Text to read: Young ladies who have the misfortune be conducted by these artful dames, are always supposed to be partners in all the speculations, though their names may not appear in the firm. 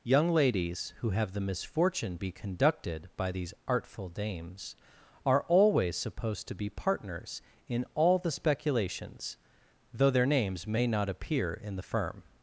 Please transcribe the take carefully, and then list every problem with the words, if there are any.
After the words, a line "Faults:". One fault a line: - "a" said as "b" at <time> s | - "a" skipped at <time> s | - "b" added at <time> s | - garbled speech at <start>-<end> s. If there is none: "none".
Young ladies who have the misfortune be conducted by these artful dames, are always supposed to be partners in all the speculations, though their names may not appear in the firm.
Faults:
none